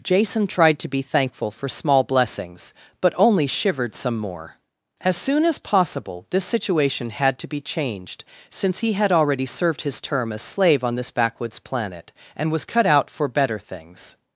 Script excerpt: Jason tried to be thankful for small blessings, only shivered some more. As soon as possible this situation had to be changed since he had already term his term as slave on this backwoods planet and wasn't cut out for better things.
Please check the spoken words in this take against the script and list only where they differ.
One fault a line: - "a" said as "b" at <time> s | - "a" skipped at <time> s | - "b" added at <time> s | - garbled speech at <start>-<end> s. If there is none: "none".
- "but" added at 3.0 s
- "term" said as "served" at 9.4 s
- "wasn't" said as "was" at 12.5 s